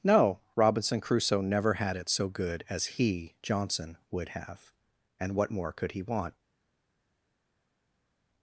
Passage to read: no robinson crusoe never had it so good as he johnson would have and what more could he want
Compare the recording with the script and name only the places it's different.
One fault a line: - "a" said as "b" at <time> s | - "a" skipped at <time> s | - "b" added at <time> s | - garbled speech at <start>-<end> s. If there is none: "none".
none